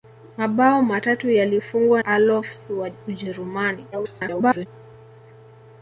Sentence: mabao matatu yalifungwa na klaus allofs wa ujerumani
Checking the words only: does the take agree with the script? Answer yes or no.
no